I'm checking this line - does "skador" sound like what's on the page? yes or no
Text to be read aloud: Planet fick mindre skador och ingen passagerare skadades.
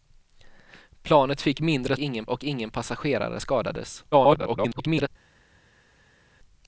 no